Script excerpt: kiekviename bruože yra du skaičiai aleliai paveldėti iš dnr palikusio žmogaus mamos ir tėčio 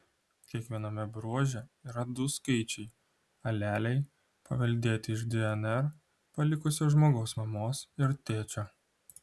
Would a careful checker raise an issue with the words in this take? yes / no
no